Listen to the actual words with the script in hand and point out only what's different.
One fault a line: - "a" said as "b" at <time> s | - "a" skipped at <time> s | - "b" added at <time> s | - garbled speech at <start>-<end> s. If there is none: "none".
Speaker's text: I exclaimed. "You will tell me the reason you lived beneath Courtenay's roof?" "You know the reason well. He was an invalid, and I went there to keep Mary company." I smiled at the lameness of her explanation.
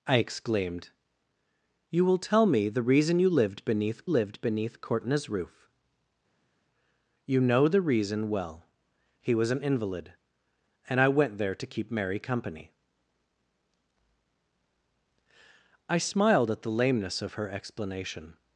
- "lived beneath" added at 4.1 s